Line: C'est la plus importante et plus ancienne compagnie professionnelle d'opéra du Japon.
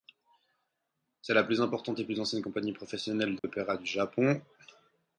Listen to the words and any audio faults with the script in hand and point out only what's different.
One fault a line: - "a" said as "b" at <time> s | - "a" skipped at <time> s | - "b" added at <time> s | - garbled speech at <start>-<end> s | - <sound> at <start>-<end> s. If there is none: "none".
- dropout at 3.4-3.4 s